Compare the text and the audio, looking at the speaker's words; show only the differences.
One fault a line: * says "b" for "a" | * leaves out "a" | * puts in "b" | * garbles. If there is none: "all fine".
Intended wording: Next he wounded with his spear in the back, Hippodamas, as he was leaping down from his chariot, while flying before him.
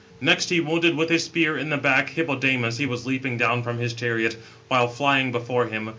* leaves out "as"